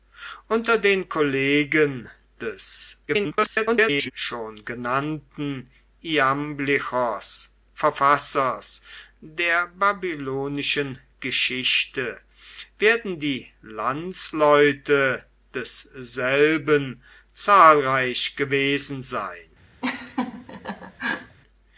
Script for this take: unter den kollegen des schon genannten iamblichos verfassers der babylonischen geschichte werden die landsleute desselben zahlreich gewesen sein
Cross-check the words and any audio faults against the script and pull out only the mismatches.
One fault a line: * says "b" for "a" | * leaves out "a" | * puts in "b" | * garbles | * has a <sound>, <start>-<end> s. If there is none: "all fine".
* garbles
* has a laugh, 19.8-21.4 s